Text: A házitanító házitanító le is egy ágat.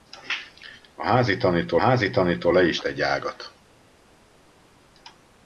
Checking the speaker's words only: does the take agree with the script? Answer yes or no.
yes